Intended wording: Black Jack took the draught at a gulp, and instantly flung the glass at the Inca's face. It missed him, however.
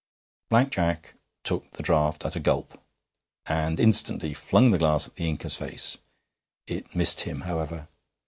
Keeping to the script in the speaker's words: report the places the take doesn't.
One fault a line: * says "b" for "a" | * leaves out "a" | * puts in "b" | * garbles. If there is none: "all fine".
all fine